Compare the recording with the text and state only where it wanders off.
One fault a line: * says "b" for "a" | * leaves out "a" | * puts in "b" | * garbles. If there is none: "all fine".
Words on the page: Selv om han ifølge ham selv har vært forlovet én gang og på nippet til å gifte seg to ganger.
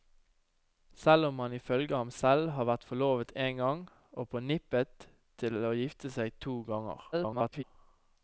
* garbles